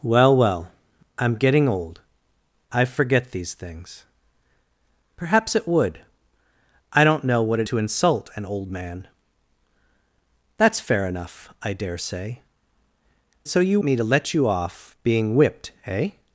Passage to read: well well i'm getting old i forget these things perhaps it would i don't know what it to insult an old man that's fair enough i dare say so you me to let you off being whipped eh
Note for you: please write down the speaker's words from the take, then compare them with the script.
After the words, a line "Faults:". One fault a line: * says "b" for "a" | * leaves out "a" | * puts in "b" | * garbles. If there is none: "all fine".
well well i'm getting old i forget these things perhaps it would i don't know what it to insult an old man that's fair enough i dare say so you me to let you off being whipped eh
Faults:
all fine